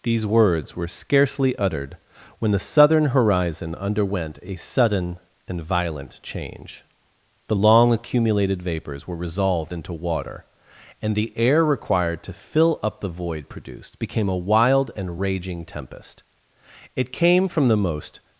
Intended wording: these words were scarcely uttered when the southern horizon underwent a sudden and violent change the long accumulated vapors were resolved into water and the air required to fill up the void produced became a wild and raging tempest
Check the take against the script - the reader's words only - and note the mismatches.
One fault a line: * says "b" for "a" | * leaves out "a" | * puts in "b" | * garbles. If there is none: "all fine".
* puts in "it came from the most"